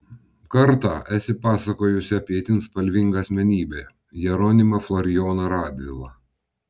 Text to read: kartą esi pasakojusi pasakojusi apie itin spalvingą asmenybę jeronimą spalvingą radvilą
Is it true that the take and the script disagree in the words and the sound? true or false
true